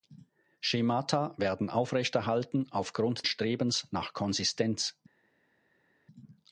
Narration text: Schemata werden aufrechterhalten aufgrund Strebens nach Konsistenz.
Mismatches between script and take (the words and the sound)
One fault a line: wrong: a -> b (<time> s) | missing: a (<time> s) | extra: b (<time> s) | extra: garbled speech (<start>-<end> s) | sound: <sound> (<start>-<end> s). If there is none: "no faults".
no faults